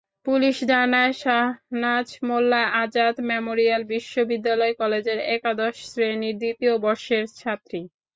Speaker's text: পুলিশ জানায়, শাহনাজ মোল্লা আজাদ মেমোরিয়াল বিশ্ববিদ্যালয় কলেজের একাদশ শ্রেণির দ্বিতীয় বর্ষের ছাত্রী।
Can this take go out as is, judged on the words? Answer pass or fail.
pass